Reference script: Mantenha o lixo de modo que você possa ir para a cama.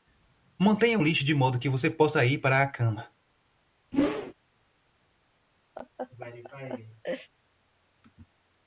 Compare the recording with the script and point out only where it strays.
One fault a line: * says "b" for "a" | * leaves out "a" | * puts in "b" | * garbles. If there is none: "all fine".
all fine